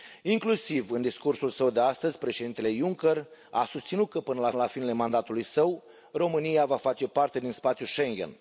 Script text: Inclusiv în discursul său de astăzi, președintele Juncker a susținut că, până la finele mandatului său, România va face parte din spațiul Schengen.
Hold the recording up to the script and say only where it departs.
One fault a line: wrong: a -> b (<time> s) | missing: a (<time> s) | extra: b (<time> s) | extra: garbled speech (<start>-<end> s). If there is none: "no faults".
extra: la (4.6 s)